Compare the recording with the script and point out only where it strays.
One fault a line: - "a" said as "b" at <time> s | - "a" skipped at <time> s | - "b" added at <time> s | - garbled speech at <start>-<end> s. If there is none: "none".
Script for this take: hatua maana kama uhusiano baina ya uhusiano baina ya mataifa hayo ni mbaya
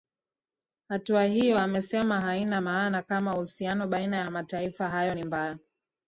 - "maana kama uhusiano baina ya" said as "hiyo amesema haina maana kama" at 1.2 s